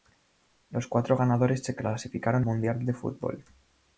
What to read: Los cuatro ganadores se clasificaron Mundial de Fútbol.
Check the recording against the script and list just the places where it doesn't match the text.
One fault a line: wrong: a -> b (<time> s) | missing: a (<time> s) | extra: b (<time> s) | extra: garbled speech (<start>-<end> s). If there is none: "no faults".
no faults